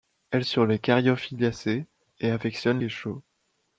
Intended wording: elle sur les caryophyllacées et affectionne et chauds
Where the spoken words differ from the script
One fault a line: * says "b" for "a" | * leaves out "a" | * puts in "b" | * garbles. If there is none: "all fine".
all fine